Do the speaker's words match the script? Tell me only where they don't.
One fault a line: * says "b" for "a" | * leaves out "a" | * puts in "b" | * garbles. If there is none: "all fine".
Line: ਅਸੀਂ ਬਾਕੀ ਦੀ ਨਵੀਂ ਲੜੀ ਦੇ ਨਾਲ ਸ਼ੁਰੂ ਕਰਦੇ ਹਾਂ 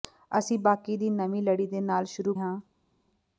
* leaves out "ਕਰਦੇ"